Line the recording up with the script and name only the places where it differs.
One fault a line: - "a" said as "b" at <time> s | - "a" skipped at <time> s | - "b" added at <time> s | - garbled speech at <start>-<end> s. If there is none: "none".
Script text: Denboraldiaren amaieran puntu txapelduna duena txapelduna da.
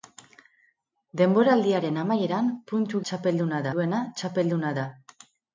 none